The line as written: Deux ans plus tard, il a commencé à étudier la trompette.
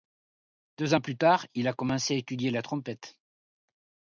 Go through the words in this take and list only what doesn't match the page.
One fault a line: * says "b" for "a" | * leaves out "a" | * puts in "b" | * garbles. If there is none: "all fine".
all fine